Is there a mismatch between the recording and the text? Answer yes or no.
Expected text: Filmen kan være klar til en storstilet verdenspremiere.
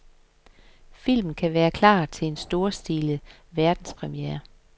no